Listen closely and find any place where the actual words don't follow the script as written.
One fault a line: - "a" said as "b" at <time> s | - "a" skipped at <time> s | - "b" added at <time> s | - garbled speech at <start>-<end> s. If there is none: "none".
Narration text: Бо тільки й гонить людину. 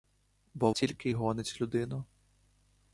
none